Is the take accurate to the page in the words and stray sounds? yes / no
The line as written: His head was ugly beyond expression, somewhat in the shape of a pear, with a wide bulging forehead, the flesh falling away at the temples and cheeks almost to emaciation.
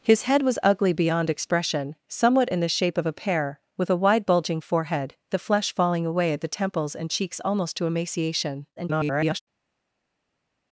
no